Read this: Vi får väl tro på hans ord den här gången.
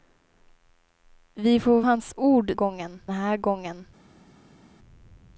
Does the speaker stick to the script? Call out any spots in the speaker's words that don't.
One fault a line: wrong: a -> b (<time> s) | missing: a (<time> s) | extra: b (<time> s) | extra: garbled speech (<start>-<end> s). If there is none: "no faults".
missing: väl tro på (1.8 s)
wrong: den -> gången (2.5 s)